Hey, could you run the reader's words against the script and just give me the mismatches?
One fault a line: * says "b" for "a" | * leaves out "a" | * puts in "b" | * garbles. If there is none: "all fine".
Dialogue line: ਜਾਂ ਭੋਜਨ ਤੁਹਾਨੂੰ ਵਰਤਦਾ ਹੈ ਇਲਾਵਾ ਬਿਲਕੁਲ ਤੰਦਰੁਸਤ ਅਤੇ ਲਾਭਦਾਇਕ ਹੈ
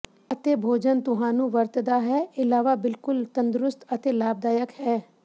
* says "ਅਤੇ" for "ਜਾਂ"